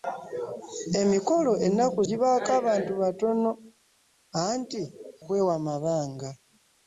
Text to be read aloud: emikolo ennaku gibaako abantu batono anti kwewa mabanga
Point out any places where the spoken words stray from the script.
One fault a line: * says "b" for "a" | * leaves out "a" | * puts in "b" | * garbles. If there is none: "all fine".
all fine